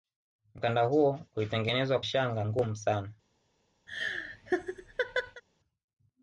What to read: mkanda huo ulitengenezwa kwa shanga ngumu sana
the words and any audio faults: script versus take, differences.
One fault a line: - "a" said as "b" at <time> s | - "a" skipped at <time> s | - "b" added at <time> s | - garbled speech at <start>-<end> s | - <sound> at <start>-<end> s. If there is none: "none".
- "kwa" skipped at 2.0 s
- laugh at 3.9-5.4 s